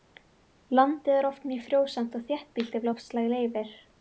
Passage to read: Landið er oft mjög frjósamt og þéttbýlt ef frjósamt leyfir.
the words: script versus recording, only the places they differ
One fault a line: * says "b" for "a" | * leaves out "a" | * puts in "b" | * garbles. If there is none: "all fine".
* says "loftslag" for "frjósamt"